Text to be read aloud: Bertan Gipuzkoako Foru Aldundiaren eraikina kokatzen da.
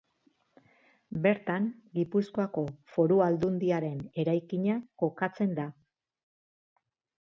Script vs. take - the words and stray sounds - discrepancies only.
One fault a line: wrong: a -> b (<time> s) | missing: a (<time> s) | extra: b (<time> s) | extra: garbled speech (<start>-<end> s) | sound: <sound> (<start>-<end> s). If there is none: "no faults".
no faults